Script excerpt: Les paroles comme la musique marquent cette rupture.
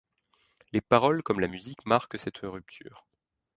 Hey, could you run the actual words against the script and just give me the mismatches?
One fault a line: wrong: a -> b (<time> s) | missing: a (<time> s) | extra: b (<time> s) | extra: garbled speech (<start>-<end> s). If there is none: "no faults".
no faults